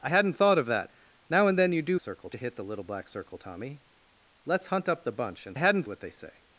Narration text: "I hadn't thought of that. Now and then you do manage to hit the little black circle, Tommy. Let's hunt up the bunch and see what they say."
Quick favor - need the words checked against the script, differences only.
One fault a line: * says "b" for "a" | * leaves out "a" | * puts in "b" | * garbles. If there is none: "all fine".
* says "circle" for "manage"
* says "hadn't" for "see"